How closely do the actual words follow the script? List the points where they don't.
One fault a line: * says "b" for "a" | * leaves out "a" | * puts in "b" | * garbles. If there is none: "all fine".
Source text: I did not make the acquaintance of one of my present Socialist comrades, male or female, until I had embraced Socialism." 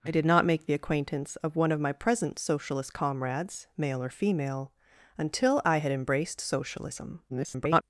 * garbles